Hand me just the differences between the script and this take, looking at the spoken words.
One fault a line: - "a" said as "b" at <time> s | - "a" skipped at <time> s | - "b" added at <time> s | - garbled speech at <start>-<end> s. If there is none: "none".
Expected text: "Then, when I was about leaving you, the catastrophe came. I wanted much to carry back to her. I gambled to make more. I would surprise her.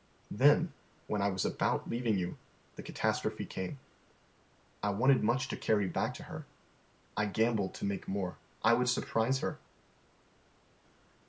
none